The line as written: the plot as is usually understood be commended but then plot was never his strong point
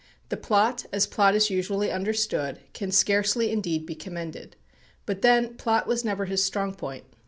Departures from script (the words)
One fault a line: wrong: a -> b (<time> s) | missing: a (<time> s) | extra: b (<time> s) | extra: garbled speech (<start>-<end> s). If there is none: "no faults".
extra: plot (1.1 s)
extra: can scarcely indeed (2.7 s)